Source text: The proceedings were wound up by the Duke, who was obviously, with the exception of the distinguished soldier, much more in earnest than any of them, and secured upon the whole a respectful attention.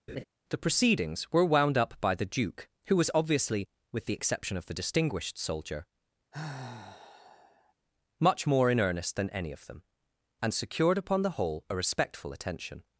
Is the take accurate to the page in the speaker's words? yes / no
yes